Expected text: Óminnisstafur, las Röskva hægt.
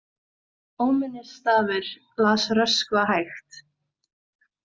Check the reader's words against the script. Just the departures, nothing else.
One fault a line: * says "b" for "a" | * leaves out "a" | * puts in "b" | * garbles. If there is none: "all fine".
all fine